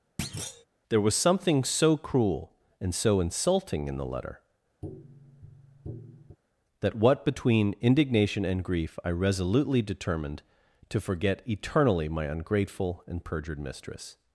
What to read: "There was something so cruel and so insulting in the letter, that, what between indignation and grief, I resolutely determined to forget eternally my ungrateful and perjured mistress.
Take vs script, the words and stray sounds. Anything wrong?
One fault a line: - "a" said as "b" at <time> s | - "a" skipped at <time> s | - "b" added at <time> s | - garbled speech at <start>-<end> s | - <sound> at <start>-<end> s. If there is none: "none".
- thud at 0.2-0.7 s
- tap at 4.8-6.4 s